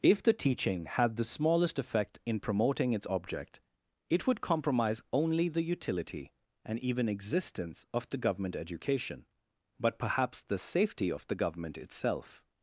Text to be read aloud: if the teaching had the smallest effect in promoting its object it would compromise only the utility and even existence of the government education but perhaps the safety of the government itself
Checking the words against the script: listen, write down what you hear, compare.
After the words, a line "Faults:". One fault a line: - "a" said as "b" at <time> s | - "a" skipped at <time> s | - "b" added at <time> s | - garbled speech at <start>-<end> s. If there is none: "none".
if the teaching had the smallest effect in promoting its object it would compromise only the utility and even existence of the government education but perhaps the safety of the government itself
Faults:
none